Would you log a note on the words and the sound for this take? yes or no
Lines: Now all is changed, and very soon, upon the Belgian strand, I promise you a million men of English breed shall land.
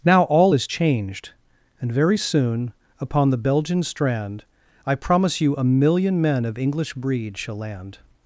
no